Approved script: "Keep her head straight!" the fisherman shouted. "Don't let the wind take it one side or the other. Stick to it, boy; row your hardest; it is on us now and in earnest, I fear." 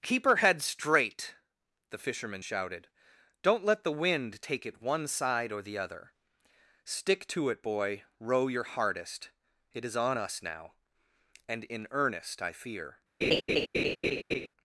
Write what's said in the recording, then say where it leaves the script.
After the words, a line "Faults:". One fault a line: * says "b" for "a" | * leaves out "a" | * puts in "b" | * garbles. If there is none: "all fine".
"Keep her head straight!" the fisherman shouted. "Don't let the wind take it one side or the other. Stick to it, boy; row your hardest; it is on us now and in earnest, I fear."
Faults:
all fine